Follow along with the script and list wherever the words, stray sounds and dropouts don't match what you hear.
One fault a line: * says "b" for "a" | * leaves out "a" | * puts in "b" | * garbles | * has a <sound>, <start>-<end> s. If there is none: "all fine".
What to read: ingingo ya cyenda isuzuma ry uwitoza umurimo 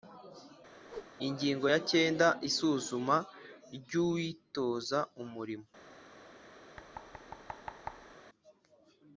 * has a whoosh, 0.9-1.1 s
* has a thud, 6.8-8.2 s